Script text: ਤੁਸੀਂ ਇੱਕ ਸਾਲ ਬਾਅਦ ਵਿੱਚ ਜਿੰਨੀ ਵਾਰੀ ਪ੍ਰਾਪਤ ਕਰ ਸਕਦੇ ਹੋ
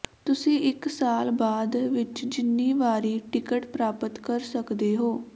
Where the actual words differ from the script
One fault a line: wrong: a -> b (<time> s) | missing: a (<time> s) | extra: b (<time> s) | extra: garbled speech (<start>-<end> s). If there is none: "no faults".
extra: ਟਿਕਟ (3.3 s)